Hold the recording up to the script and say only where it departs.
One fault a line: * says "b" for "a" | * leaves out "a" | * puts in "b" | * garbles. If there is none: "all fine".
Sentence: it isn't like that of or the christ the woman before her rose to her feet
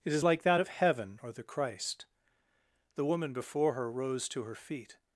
* says "is" for "isn't"
* puts in "heaven"